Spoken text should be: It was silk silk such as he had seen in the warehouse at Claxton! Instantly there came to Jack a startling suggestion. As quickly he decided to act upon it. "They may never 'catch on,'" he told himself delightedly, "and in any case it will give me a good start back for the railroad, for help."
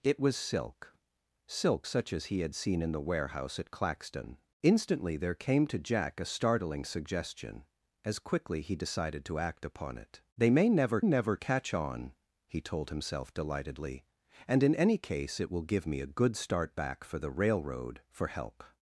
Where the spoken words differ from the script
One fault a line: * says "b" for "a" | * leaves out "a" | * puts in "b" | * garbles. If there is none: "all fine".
* puts in "never"